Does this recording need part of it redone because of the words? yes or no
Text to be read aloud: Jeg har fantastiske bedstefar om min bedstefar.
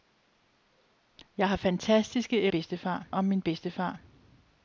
no